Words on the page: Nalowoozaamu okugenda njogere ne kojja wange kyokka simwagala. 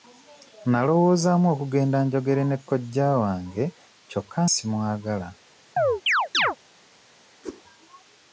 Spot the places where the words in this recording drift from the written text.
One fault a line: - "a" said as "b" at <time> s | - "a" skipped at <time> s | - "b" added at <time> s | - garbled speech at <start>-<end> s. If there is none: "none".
none